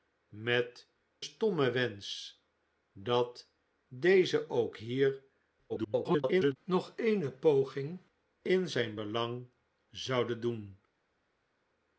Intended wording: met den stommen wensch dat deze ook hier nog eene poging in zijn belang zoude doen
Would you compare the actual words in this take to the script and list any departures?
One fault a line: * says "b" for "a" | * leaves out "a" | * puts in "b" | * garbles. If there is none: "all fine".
* leaves out "den"
* garbles